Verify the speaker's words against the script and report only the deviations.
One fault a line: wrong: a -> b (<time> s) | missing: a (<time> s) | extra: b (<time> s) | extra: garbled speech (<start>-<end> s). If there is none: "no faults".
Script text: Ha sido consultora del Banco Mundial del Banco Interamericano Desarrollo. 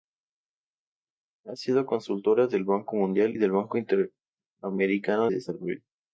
no faults